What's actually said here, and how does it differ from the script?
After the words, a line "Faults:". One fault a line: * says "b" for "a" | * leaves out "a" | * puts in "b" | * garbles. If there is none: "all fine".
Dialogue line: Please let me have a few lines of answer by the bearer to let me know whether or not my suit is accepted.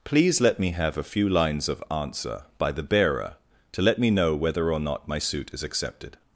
Please let me have a few lines of answer by the bearer to let me know whether or not my suit is accepted.
Faults:
all fine